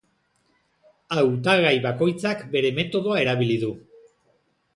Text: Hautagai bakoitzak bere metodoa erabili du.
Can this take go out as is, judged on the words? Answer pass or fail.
pass